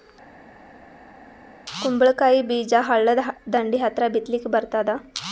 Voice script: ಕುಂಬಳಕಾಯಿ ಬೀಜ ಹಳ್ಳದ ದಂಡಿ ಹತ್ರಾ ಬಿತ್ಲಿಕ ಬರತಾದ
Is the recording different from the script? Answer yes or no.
no